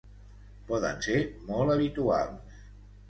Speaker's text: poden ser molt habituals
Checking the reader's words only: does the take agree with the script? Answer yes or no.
yes